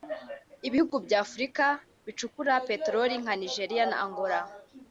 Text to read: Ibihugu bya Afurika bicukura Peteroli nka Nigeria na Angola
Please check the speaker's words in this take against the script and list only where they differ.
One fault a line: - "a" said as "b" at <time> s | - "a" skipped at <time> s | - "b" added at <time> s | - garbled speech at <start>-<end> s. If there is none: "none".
none